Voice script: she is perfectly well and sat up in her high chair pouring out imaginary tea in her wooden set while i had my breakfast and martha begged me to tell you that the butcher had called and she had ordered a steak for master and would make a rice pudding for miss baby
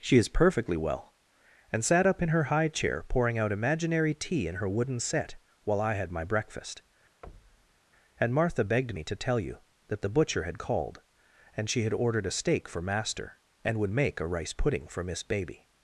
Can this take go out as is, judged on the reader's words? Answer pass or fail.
pass